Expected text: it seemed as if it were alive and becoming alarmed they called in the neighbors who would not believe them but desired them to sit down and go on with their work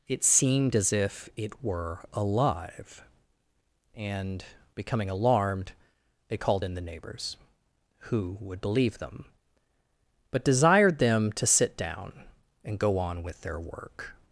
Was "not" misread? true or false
true